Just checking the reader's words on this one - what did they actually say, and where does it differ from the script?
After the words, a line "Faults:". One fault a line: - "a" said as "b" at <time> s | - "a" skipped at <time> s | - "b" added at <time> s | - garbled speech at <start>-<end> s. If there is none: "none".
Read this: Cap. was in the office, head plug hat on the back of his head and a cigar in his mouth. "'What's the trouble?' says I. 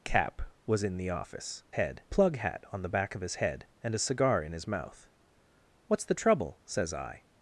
Cap. was in the office, head plug hat on the back of his head and a cigar in his mouth. "'What's the trouble?' says I.
Faults:
none